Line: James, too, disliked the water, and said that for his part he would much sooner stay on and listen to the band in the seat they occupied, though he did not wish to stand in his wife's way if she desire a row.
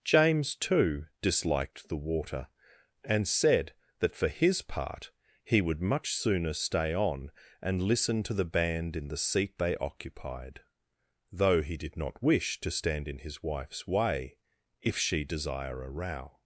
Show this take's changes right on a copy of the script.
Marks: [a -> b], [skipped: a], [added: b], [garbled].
James, too, disliked the water, and said that for his part he would much sooner stay on and listen to the band in the seat they occupied, though he did not wish to stand in his wife's way if she desire a row.